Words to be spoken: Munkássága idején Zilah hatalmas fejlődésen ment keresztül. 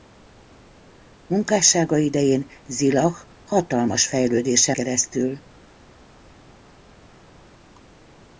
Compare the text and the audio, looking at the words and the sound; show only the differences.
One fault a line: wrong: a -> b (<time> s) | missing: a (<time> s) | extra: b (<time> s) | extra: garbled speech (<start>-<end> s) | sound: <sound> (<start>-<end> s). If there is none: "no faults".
missing: ment (4.8 s)